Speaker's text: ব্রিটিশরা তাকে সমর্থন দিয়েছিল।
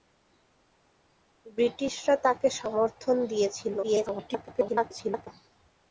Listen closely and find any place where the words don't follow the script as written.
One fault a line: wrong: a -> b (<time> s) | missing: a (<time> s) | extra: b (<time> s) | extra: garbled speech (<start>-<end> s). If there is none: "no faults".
extra: garbled speech (3.8-5.3 s)